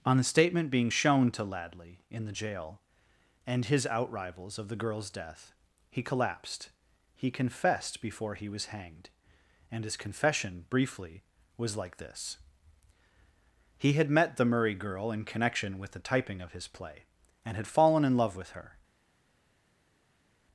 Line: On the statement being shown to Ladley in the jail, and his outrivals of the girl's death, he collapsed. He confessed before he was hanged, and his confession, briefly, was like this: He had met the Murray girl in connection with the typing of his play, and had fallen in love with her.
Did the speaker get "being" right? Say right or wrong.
right